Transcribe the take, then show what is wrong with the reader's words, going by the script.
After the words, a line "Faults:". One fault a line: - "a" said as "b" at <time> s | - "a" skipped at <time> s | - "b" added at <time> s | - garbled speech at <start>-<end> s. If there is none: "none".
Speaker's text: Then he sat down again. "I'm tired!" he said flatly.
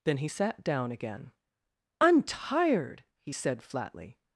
Then he sat down again. "I'm tired!" he said flatly.
Faults:
none